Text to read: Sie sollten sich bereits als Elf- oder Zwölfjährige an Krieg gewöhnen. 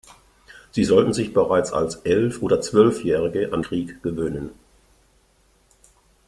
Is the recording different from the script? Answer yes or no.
no